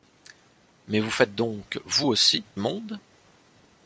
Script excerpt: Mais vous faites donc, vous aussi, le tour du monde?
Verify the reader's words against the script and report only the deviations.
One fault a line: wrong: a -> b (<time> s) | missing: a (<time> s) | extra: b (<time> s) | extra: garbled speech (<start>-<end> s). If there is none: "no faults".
missing: le tour du (2.4 s)